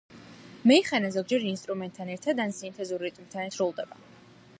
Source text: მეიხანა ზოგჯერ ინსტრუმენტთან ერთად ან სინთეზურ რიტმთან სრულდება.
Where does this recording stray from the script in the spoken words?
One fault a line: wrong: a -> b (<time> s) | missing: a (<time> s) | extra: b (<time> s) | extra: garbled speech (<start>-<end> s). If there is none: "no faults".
no faults